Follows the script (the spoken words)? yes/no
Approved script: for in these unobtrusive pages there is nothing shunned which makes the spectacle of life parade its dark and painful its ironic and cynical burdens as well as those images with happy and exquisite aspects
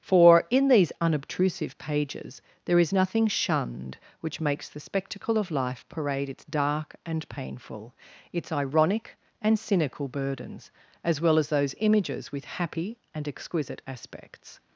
yes